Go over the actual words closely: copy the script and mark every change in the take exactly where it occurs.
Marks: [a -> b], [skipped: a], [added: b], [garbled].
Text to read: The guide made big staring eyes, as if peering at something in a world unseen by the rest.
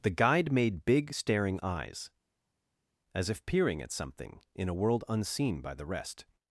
The guide made big staring eyes, as if peering at something in a world unseen by the rest.